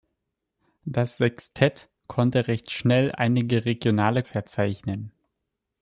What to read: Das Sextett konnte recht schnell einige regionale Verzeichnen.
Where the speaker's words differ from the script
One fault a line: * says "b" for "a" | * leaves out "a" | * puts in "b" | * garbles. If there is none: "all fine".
all fine